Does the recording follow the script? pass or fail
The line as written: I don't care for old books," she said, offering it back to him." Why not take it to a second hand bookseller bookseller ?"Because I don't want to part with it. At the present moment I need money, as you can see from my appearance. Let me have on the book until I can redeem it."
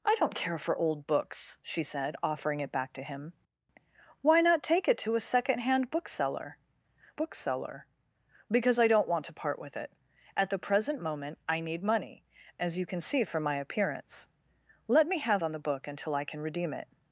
pass